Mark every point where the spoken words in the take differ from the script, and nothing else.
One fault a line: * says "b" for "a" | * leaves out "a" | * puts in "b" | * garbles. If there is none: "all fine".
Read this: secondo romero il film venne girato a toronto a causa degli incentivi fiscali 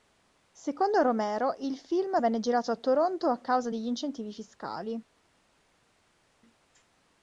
all fine